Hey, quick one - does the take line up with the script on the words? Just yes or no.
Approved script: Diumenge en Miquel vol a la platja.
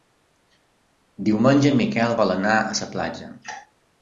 no